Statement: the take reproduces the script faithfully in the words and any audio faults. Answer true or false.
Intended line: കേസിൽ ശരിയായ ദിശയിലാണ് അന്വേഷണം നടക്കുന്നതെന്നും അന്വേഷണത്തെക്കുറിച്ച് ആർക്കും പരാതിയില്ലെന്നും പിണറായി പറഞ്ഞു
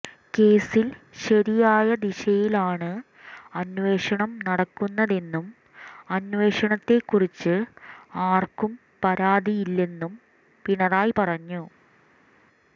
true